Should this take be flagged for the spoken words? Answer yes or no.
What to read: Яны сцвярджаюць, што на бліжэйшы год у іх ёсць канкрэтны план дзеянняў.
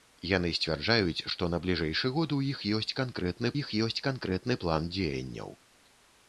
yes